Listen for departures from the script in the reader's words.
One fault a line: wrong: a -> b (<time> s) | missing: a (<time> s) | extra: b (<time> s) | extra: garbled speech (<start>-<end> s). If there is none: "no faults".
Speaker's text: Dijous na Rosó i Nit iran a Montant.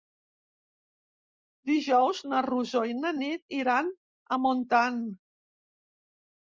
extra: na (3.0 s)